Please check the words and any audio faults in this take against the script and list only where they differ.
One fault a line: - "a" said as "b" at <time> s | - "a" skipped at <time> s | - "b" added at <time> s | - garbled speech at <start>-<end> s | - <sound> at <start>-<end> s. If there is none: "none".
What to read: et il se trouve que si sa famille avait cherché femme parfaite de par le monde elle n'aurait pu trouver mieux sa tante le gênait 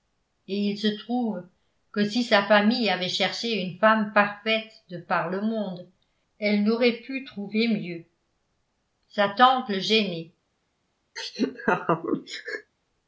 - "une" added at 3.6 s
- laugh at 11.2-12.7 s